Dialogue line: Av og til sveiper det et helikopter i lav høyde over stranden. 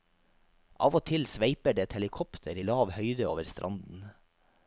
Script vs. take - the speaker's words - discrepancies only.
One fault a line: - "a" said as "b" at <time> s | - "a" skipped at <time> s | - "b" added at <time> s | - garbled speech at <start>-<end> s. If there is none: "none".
none